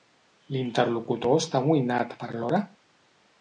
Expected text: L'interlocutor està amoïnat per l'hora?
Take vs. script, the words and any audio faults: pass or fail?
pass